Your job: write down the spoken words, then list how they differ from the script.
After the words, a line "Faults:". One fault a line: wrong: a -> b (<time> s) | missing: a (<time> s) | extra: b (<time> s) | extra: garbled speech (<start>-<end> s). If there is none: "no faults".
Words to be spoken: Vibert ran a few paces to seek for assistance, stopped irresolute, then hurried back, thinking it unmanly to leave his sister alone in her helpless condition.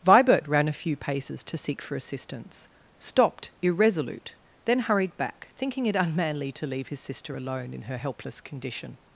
Vibert ran a few paces to seek for assistance, stopped irresolute, then hurried back, thinking it unmanly to leave his sister alone in her helpless condition.
Faults:
no faults